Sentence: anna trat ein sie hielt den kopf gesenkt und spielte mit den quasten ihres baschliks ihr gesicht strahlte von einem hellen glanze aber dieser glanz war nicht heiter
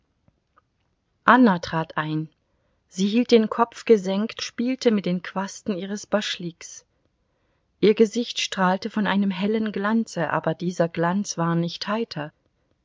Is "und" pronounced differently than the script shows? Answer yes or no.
yes